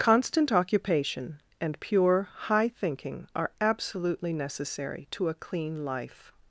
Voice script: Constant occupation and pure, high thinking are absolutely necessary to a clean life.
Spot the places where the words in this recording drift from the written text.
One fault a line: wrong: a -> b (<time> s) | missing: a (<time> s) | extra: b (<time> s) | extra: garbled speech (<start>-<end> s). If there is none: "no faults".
no faults